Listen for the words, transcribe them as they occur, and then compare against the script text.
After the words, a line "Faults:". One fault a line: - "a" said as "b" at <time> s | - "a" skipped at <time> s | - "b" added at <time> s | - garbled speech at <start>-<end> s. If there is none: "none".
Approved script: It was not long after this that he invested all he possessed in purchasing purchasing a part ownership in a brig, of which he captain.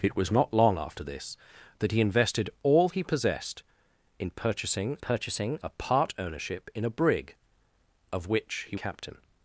It was not long after this that he invested all he possessed in purchasing purchasing a part ownership in a brig, of which he captain.
Faults:
none